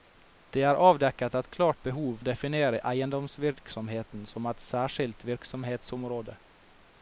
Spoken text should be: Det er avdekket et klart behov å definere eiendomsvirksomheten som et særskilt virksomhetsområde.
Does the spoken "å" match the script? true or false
true